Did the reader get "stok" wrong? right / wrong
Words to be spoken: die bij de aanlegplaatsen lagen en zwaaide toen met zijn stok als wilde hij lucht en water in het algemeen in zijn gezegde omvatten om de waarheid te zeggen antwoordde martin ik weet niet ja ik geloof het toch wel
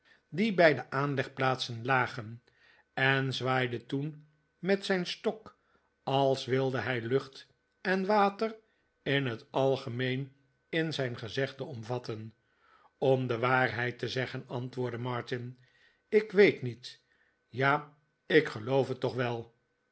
right